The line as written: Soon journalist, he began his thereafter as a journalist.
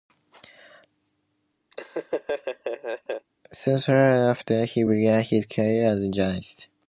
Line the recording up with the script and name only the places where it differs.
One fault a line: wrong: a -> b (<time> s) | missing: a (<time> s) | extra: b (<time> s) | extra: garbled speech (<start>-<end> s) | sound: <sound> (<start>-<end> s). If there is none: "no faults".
sound: laugh (1.7-3.3 s)
wrong: journalist -> thereafter (3.8 s)
wrong: thereafter -> career (5.5 s)